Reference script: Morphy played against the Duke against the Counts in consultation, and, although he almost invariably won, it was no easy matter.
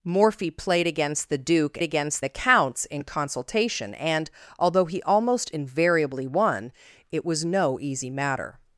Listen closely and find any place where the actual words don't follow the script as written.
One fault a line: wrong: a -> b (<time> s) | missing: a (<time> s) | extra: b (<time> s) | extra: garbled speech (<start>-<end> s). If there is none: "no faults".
no faults